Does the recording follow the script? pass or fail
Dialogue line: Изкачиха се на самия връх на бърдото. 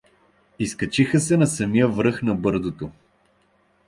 pass